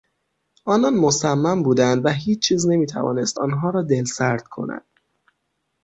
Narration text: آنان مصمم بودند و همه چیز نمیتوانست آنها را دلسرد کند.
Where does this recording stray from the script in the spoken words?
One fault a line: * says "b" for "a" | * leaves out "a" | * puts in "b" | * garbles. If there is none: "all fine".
* says "هیچ" for "همه"